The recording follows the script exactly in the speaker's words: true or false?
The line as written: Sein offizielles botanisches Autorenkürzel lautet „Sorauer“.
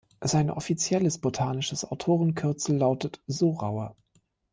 true